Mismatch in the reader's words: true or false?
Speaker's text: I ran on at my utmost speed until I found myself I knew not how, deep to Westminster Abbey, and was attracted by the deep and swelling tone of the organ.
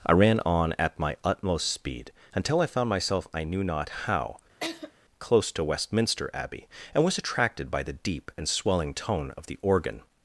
true